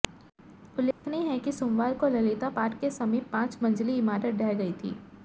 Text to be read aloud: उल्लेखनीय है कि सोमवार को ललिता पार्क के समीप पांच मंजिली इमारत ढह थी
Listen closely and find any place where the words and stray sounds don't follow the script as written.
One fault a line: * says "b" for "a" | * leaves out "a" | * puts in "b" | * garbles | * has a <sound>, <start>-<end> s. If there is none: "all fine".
* has a dropout, 0.9-1.0 s
* puts in "गई"